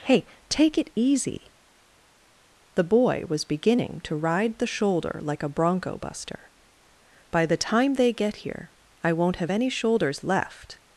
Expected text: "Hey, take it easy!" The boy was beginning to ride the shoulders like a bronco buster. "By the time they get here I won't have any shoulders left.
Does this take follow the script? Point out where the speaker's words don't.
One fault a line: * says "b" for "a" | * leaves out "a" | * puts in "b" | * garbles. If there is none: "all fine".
* says "shoulder" for "shoulders"